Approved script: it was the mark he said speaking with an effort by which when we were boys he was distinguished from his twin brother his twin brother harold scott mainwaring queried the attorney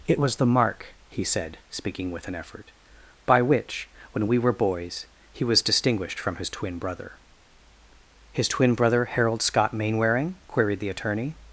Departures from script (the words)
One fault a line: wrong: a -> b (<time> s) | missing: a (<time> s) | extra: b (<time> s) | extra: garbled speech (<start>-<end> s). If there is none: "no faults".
no faults